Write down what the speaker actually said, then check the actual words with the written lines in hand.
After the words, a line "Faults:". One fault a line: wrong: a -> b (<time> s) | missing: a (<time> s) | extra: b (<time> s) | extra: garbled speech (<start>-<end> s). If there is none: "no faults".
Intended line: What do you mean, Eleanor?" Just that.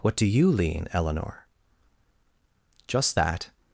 What do you lean, Eleanor?" Just that.
Faults:
wrong: mean -> lean (0.5 s)